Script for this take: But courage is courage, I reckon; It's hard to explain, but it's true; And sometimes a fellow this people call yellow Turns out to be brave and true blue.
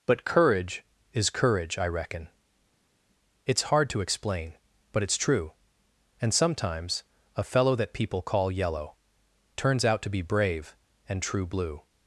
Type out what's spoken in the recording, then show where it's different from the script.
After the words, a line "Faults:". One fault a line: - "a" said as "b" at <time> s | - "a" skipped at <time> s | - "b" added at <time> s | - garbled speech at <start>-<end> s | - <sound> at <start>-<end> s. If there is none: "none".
But courage is courage, I reckon; It's hard to explain, but it's true; And sometimes a fellow that people call yellow Turns out to be brave and true blue.
Faults:
- "this" said as "that" at 7.8 s